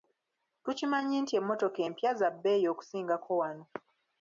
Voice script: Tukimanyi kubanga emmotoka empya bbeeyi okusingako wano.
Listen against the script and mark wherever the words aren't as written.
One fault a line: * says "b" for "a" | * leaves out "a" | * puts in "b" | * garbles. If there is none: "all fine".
* says "nti" for "kubanga"
* puts in "za"